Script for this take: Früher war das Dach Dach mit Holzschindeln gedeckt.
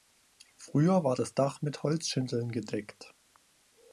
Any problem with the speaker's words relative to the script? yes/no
yes